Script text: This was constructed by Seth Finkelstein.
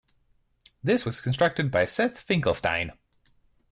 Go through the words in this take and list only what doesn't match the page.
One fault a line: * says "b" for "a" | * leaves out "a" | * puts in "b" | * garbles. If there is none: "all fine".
all fine